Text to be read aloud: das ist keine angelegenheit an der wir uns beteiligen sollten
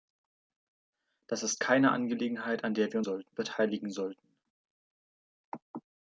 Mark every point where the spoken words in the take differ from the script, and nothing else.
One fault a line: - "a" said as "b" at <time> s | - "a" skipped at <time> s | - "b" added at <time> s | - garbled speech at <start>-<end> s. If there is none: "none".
- "uns" said as "sollten" at 3.0 s